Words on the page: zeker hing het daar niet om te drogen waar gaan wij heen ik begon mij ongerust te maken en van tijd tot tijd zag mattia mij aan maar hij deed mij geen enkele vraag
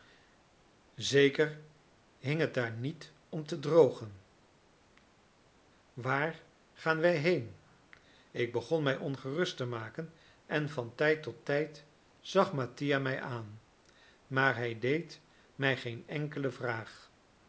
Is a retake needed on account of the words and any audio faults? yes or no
no